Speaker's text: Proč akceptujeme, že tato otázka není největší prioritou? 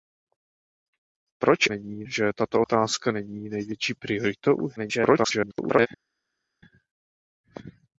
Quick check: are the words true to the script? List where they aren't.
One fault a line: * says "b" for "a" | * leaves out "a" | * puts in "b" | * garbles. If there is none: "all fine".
* says "není" for "akceptujeme"
* garbles